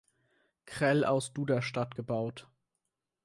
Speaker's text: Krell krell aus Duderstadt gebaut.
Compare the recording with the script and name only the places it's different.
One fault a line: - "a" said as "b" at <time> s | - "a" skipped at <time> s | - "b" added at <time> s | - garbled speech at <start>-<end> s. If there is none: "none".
- "krell" skipped at 1.1 s